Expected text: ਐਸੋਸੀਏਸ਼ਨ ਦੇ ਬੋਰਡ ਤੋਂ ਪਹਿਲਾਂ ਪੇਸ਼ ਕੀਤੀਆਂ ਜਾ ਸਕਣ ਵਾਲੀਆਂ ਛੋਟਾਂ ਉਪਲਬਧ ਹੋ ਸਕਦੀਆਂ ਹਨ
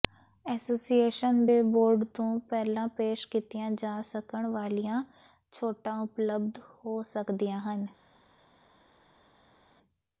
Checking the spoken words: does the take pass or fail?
pass